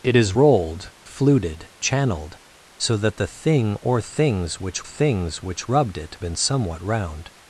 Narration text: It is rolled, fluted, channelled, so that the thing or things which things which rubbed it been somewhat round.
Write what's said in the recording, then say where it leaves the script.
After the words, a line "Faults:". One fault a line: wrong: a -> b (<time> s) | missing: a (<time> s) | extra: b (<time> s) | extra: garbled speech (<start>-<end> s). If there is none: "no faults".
It is rolled, fluted, channelled, so that the thing or things which things which rubbed it been somewhat round.
Faults:
no faults